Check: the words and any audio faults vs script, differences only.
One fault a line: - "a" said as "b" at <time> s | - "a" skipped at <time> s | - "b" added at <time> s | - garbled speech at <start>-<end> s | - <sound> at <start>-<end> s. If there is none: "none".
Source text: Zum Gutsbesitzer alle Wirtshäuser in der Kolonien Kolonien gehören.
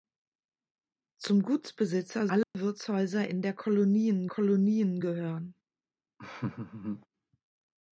- dropout at 2.4-2.5 s
- laugh at 6.2-7.1 s